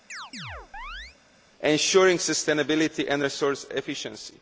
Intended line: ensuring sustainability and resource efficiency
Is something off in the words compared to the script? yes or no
no